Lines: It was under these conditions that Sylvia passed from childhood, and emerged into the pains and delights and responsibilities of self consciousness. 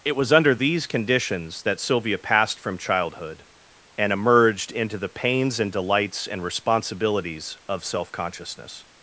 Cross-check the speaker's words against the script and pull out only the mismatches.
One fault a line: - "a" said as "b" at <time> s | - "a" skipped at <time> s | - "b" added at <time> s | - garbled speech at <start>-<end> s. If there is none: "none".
none